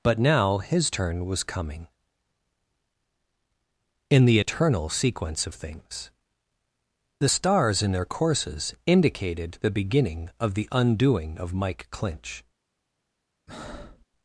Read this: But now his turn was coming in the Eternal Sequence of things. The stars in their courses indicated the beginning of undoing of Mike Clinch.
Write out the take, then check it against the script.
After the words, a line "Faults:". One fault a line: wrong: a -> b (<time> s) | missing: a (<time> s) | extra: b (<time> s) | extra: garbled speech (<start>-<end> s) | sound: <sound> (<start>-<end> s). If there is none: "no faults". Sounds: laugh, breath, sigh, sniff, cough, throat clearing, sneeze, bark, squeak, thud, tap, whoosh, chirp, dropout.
But now his turn was coming in the Eternal Sequence of things. The stars in their courses indicated the beginning of the undoing of Mike Clinch.
Faults:
extra: the (10.5 s)
sound: breath (13.5-14.1 s)